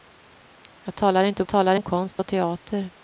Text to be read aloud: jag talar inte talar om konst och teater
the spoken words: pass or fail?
pass